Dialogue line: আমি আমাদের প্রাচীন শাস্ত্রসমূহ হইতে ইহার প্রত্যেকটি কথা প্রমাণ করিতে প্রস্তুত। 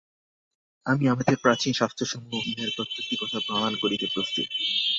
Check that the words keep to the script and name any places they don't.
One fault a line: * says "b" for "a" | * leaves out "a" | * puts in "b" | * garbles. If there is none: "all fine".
* leaves out "হইতে"